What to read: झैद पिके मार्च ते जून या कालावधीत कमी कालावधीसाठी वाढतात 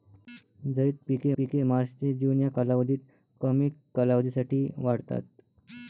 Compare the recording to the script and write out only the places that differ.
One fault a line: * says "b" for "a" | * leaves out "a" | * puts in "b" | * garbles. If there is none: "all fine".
* puts in "पिके"